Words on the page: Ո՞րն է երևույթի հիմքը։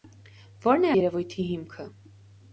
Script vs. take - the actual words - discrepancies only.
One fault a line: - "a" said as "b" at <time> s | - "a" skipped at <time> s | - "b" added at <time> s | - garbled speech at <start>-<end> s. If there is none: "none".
none